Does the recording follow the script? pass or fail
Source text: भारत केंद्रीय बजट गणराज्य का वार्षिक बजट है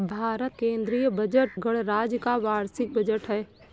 pass